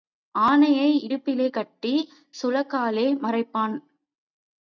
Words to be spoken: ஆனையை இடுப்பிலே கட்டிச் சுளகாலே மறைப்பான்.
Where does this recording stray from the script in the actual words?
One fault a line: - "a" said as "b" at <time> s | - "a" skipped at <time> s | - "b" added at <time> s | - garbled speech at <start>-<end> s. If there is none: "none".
none